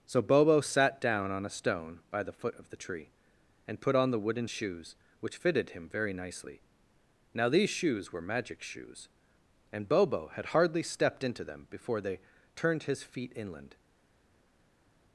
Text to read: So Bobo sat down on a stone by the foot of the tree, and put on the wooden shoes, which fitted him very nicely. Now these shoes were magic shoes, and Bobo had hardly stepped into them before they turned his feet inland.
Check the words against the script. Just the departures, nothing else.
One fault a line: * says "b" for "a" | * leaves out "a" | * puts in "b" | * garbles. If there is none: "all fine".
all fine